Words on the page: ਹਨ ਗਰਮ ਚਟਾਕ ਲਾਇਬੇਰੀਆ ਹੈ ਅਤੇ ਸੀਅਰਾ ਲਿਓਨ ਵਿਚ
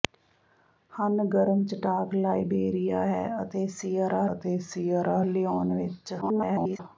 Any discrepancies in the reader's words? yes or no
yes